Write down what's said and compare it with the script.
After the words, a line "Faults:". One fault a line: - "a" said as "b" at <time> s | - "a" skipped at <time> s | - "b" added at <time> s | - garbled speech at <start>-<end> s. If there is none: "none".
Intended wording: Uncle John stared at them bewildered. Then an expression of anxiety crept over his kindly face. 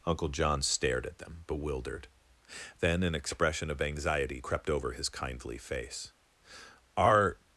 Uncle John stared at them bewildered. Then an expression of anxiety crept over his kindly face. "Are
Faults:
- "Are" added at 7.0 s